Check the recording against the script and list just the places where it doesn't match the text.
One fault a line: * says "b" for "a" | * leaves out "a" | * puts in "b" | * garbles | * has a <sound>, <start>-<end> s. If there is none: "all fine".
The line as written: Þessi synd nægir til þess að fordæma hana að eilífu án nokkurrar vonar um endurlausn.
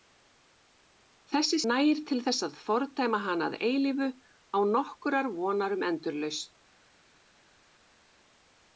* leaves out "synd"